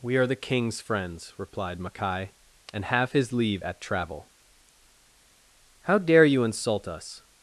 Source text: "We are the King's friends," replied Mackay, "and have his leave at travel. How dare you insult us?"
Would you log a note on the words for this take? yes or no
no